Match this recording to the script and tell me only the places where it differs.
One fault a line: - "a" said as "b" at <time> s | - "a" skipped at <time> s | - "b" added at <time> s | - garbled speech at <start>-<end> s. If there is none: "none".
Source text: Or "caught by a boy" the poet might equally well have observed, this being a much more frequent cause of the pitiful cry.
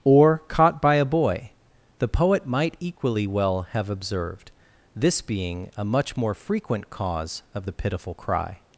none